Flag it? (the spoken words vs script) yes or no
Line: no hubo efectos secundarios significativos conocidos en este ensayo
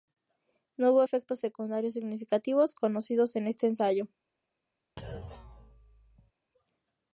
no